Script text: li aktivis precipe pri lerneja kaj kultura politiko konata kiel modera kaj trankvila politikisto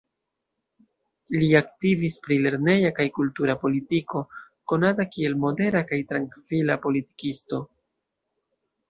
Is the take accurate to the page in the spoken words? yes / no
no